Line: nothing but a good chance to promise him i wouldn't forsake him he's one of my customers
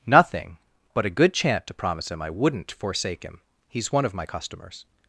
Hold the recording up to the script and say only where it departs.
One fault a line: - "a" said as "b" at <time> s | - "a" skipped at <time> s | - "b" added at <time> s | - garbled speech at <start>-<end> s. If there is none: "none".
- "chance" said as "chant" at 1.3 s